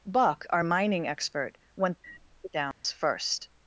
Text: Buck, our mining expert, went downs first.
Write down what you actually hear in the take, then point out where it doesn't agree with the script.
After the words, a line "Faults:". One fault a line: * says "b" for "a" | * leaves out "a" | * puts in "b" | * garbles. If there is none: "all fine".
Buck, our mining expert, went downs first.
Faults:
all fine